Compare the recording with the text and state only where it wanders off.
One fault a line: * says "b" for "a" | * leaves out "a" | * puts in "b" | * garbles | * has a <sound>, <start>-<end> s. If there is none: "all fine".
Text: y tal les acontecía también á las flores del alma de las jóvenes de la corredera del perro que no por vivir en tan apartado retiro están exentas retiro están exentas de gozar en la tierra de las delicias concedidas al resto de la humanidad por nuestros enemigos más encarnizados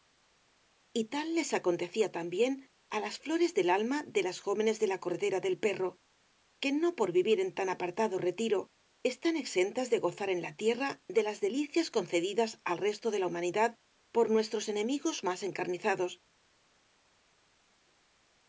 * leaves out "retiro están exentas"